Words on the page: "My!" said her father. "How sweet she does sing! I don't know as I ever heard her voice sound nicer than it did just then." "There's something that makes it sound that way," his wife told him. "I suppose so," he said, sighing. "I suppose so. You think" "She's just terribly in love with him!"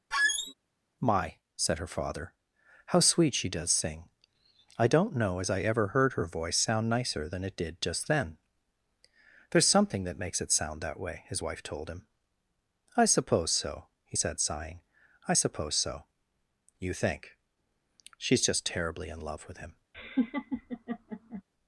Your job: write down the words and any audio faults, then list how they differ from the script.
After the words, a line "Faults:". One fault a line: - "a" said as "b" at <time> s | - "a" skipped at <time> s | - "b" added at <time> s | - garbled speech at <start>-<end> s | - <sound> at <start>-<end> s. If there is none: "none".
"My!" said her father. "How sweet she does sing! I don't know as I ever heard her voice sound nicer than it did just then." "There's something that makes it sound that way," his wife told him. "I suppose so," he said, sighing. "I suppose so. You think" "She's just terribly in love with him!"
Faults:
- squeak at 0.1-0.5 s
- laugh at 19.9-21.4 s